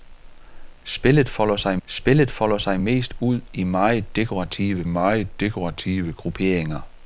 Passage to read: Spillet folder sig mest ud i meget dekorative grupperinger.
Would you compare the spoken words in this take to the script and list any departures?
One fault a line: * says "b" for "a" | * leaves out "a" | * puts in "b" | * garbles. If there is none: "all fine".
* puts in "spillet folder sig"
* puts in "meget dekorative"